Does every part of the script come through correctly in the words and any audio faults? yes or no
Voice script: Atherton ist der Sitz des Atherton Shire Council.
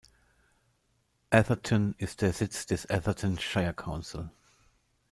yes